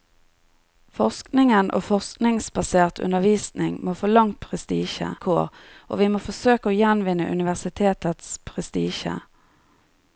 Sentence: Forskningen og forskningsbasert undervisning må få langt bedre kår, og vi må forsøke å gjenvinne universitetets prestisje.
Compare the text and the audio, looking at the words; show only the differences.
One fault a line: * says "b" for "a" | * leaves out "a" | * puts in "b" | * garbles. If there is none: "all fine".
* says "prestisje" for "bedre"